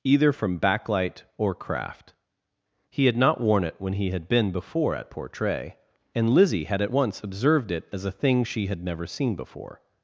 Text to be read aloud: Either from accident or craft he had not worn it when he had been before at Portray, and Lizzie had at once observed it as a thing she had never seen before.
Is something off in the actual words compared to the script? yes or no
yes